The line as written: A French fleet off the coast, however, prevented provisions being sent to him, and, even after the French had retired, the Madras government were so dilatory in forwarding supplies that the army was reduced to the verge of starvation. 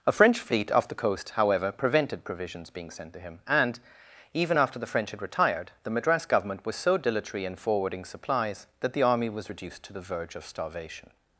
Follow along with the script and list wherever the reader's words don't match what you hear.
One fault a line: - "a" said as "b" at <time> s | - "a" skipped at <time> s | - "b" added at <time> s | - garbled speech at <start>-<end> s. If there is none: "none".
- "were" said as "was" at 6.6 s